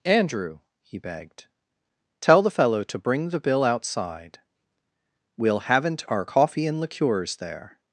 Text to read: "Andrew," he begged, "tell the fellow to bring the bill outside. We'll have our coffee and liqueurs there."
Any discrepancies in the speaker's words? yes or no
yes